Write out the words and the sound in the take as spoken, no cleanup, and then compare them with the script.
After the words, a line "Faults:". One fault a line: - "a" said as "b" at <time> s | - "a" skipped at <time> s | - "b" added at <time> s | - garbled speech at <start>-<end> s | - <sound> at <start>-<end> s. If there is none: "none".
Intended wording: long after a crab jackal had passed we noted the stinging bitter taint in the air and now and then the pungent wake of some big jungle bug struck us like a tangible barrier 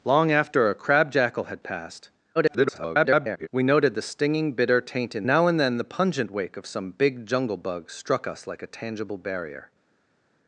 long after a crab jackal had passed [garbled] we noted the stinging bitter taint in now and then the pungent wake of some big jungle bug struck us like a tangible barrier
Faults:
- garbled speech at 2.4-3.5 s
- "the air and" skipped at 5.3 s